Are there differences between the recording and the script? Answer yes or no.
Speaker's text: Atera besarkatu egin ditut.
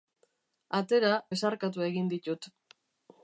no